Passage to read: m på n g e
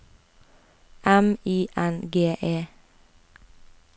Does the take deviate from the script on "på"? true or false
true